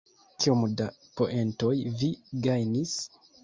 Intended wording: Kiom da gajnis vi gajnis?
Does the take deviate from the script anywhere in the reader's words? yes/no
yes